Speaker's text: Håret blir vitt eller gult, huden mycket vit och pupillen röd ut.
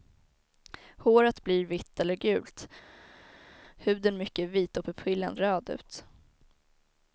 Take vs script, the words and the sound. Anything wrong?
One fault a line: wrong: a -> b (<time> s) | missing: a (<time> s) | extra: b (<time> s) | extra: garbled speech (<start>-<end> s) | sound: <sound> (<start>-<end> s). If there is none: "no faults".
no faults